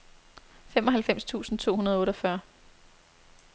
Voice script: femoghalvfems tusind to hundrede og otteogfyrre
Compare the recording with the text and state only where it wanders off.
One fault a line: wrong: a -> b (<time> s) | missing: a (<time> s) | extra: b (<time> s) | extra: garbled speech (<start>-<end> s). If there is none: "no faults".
no faults